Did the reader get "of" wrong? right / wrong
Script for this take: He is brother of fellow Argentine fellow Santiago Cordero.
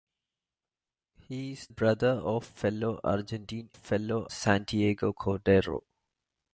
right